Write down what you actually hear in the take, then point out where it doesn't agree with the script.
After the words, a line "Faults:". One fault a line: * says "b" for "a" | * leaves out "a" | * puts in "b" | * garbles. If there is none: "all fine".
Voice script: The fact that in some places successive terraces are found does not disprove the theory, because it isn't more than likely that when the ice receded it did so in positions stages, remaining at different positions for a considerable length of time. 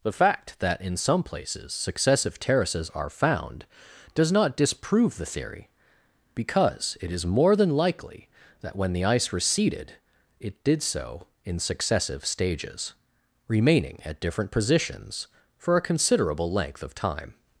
The fact that in some places successive terraces are found does not disprove the theory, because it is more than likely that when the ice receded it did so in successive stages, remaining at different positions for a considerable length of time.
Faults:
* says "is" for "isn't"
* says "successive" for "positions"